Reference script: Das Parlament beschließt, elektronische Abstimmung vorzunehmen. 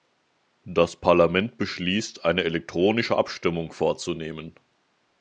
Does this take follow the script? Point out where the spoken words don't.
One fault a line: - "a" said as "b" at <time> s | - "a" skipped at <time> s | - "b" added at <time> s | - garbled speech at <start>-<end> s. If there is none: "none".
- "eine" added at 2.2 s